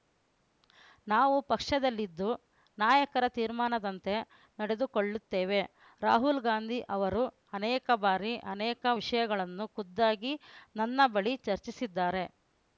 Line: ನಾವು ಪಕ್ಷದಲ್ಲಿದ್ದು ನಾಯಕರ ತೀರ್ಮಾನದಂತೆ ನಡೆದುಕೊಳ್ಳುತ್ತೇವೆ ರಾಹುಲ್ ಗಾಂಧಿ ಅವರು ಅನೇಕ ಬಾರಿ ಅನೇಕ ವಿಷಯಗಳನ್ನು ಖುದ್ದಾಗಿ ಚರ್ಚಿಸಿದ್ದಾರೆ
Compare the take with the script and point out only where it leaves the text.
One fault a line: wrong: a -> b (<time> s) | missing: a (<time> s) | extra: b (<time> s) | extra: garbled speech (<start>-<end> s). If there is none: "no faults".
extra: ನನ್ನ ಬಳಿ (10.8 s)